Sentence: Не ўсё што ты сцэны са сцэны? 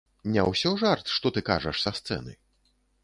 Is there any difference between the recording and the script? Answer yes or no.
yes